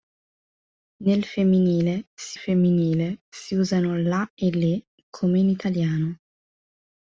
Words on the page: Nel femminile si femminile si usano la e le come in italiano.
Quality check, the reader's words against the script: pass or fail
pass